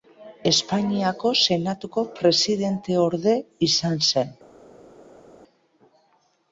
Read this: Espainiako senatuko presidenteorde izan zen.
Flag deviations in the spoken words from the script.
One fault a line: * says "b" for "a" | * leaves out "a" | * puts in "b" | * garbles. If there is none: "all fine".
all fine